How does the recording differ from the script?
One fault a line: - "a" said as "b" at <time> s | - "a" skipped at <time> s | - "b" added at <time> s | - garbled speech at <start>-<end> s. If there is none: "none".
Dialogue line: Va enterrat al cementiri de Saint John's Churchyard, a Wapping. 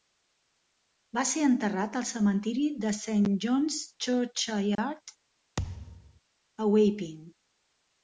- "ser" added at 1.3 s